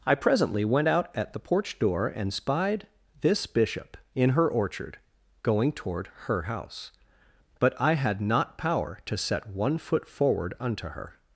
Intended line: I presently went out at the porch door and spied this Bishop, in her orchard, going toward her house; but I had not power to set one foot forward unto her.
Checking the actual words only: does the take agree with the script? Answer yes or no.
yes